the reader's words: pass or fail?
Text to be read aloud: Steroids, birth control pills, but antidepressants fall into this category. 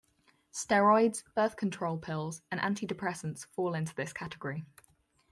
fail